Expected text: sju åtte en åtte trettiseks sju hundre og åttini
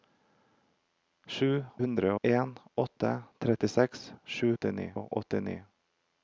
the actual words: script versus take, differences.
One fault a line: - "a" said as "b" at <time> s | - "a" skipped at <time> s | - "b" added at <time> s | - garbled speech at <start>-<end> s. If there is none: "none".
- "åtte" said as "hundre" at 1.8 s
- "hundre" said as "åttini" at 4.5 s